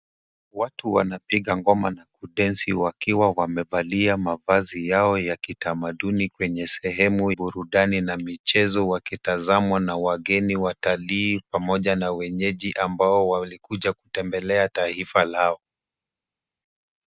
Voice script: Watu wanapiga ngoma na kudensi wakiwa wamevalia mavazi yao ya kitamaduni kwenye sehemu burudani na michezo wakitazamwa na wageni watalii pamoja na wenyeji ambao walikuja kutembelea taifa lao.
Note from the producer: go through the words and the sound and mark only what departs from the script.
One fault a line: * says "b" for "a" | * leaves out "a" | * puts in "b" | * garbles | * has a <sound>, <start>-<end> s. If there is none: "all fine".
all fine